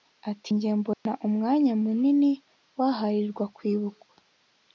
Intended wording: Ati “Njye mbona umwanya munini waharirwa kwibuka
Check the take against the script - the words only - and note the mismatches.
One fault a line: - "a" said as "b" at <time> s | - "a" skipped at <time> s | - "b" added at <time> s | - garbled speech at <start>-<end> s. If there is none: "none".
none